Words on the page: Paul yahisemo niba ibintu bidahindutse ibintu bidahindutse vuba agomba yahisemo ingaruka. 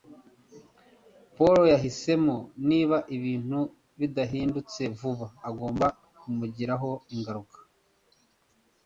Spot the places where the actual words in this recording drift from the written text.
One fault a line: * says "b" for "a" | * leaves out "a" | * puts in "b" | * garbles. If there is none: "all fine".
* leaves out "ibintu bidahindutse"
* says "kumugiraho" for "yahisemo"